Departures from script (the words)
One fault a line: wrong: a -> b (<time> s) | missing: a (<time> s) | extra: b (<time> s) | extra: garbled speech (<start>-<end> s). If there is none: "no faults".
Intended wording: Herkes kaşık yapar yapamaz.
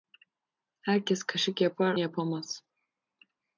no faults